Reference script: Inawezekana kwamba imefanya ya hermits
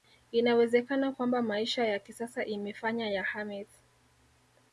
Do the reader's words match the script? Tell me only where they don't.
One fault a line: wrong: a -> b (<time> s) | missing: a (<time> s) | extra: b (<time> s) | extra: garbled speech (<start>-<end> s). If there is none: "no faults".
extra: maisha ya kisasa (1.4 s)